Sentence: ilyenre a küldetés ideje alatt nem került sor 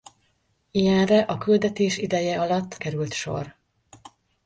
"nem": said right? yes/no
no